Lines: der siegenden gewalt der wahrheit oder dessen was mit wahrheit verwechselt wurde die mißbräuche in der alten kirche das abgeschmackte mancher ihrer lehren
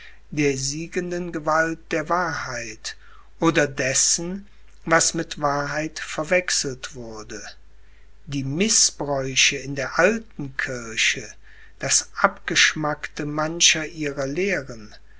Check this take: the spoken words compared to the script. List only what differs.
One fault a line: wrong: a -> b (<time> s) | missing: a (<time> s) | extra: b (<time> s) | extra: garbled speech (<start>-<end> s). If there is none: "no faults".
no faults